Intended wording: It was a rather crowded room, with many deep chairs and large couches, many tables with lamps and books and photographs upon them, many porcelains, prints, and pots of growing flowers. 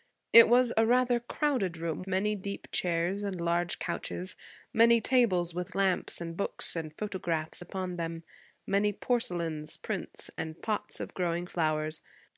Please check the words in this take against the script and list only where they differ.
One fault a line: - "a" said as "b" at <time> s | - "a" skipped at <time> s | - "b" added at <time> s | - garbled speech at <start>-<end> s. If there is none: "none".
- "with" skipped at 2.0 s